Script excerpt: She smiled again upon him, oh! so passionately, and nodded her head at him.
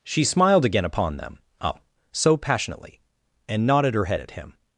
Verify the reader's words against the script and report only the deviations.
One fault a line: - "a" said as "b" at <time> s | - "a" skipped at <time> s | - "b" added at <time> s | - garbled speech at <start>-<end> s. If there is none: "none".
- "him" said as "them" at 1.2 s